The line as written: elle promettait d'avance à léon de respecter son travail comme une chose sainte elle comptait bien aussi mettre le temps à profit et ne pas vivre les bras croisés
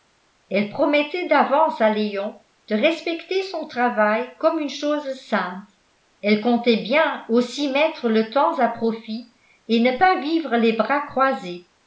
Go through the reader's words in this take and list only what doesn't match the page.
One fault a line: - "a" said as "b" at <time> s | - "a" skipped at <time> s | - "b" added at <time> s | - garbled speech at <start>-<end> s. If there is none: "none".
none